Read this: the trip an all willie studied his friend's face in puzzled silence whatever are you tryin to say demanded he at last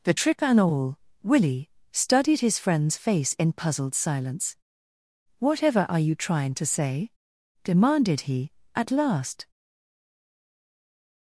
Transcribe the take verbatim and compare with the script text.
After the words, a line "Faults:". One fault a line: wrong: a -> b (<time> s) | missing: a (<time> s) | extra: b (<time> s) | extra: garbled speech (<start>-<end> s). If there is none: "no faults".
the trick and all willie studied his friend's face in puzzled silence whatever are you trying to say demanded he at last
Faults:
wrong: trip an -> trick and (0.1 s)
wrong: tryin -> trying (6.1 s)